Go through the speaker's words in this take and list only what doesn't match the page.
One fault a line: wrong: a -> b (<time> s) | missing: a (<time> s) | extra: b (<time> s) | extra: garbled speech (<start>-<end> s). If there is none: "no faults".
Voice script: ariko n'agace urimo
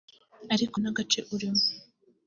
no faults